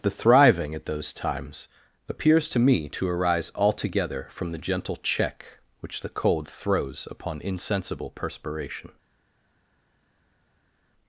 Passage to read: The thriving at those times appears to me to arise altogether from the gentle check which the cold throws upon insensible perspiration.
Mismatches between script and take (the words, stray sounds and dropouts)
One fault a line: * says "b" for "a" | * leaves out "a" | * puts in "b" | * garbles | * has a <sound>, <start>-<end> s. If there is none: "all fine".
all fine